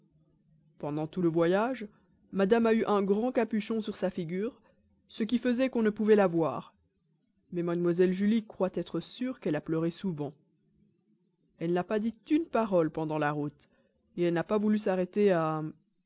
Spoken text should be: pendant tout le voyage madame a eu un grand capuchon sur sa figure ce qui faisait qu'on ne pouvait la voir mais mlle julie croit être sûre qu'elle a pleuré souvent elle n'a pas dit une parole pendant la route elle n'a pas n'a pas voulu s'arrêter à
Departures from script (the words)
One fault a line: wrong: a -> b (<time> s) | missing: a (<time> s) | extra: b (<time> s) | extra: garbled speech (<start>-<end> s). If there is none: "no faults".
missing: n'a pas (14.6 s)